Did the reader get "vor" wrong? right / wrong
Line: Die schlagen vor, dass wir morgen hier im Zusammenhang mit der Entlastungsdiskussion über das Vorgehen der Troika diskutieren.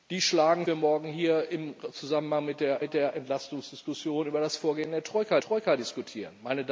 wrong